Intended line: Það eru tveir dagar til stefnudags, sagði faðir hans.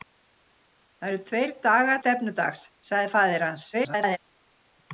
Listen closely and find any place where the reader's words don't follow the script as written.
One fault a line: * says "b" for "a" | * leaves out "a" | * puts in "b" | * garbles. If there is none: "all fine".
* leaves out "til"
* garbles